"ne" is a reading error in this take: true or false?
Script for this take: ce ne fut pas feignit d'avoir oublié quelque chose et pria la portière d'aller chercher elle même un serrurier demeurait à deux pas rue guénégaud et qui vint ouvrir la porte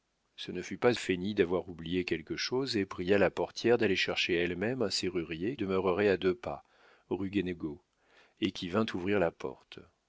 false